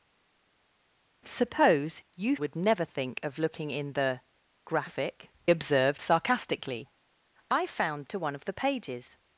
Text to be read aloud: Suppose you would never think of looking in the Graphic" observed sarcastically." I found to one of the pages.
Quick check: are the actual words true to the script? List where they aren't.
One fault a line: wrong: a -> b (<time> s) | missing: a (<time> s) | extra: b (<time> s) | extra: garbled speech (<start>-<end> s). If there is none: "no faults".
no faults